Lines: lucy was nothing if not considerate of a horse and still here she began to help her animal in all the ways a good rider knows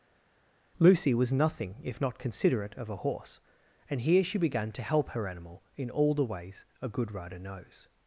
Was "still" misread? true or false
true